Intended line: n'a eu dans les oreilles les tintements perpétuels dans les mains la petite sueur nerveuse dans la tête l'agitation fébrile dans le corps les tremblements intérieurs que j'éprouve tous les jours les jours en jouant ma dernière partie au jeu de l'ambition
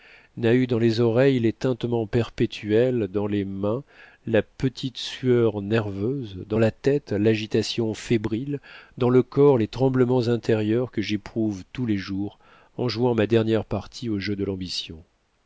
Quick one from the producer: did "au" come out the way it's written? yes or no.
yes